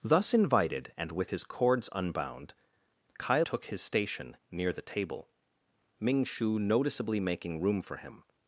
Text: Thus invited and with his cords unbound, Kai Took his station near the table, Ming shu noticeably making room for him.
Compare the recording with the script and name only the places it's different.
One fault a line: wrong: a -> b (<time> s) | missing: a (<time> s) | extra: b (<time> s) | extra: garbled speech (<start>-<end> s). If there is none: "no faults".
no faults